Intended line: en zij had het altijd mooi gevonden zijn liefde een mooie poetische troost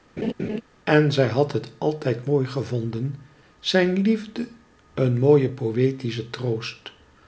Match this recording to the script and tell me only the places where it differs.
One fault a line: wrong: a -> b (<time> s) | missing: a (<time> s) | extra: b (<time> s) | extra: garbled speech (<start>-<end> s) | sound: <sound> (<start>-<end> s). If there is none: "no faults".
sound: laugh (0.2-0.6 s)